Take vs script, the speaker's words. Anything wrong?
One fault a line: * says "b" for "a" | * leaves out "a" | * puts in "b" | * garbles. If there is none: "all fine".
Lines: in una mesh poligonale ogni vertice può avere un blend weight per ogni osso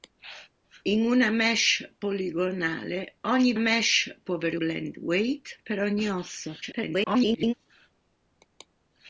* says "mesh" for "vertice"
* leaves out "un"
* garbles